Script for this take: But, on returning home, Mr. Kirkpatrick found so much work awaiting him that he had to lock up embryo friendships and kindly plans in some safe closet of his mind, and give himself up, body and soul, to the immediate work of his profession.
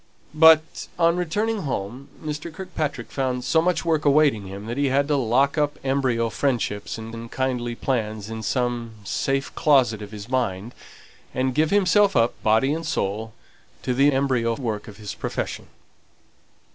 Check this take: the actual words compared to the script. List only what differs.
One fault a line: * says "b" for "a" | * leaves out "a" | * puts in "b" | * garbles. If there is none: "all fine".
* puts in "and"
* says "embryo" for "immediate"